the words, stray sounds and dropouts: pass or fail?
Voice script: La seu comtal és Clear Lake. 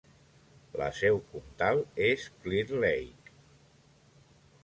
pass